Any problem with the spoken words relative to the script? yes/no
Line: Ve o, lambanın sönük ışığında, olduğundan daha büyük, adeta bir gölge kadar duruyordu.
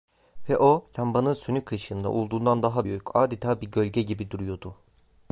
yes